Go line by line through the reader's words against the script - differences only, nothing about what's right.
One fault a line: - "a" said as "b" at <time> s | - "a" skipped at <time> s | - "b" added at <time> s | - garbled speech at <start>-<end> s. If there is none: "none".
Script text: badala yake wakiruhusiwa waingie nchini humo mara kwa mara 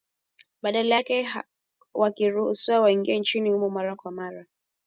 none